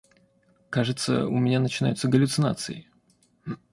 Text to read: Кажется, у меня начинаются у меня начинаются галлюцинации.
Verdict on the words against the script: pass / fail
fail